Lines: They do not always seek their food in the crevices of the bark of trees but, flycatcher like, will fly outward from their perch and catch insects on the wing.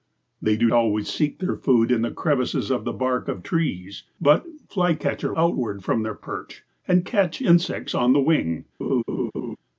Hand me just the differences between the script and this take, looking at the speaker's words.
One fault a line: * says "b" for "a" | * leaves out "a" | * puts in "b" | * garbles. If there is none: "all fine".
* leaves out "not"
* leaves out "like will fly"